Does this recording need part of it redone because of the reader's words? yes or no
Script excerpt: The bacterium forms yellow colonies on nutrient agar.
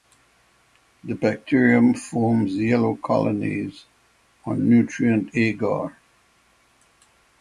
no